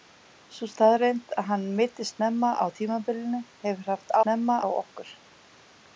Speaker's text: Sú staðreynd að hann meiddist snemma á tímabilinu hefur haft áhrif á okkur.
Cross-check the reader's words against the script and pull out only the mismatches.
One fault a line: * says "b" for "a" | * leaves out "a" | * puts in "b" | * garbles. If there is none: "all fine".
* says "snemma" for "áhrif"